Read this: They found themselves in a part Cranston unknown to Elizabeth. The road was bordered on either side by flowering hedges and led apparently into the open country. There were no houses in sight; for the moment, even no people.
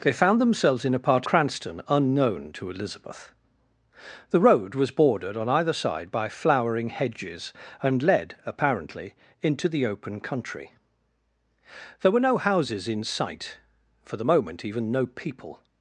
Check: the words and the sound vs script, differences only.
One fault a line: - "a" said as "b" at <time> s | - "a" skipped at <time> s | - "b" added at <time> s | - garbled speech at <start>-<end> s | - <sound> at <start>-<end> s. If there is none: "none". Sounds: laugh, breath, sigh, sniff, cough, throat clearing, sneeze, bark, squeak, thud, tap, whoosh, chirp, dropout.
none